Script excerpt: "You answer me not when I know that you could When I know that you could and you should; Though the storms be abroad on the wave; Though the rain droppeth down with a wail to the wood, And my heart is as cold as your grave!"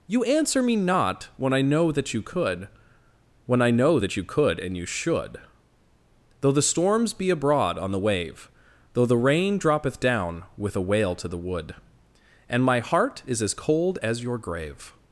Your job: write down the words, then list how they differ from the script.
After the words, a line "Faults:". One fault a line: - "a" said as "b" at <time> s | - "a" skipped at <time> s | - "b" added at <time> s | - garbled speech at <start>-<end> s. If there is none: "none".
"You answer me not when I know that you could When I know that you could and you should; Though the storms be abroad on the wave; Though the rain droppeth down with a wail to the wood, And my heart is as cold as your grave!"
Faults:
none